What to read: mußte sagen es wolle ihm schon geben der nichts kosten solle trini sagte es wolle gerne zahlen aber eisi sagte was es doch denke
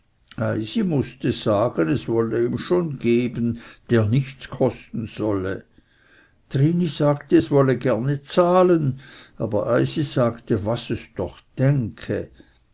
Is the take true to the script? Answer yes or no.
yes